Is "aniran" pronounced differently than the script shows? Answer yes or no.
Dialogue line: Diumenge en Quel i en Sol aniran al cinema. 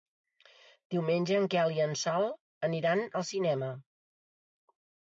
no